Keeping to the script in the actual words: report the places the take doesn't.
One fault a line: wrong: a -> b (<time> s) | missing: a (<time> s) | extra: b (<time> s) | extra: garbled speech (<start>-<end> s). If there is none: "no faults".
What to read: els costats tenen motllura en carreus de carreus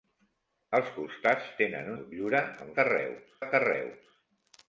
no faults